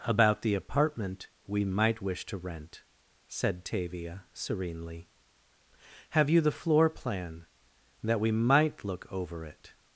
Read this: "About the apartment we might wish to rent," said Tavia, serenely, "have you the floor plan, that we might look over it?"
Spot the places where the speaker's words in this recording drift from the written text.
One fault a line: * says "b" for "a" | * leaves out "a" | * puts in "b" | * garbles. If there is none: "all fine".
all fine